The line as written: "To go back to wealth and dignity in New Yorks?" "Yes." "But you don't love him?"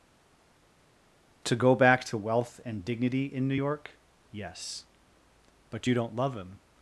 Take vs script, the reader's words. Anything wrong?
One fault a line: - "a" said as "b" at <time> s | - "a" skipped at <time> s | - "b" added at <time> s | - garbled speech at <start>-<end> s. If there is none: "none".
- "Yorks" said as "York" at 3.5 s